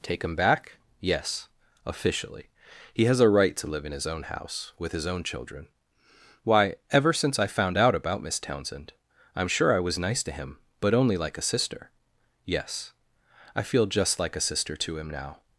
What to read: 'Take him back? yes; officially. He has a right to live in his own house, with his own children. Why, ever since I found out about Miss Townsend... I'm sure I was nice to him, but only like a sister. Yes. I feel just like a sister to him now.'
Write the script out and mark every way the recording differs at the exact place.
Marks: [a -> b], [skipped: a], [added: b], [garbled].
'Take him back? yes; officially. He has a right to live in his own house, with his own children. Why, ever since I found out about Miss Townsend... I'm sure I was nice to him, but only like a sister. Yes. I feel just like a sister to him now.'